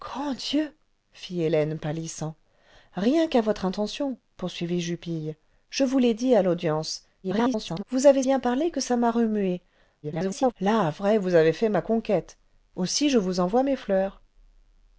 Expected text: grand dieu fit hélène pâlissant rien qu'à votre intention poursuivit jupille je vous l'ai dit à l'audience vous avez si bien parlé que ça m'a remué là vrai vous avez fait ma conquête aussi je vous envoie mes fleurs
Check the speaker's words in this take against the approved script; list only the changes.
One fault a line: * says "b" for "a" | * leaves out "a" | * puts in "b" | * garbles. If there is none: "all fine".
* garbles
* leaves out "si"
* garbles